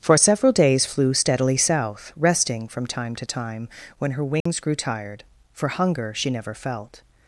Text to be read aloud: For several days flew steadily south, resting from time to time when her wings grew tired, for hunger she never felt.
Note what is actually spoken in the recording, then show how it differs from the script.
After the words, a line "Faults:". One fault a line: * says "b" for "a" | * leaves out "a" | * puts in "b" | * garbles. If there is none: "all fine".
For several days flew steadily south, resting from time to time when her wings grew tired, for hunger she never felt.
Faults:
all fine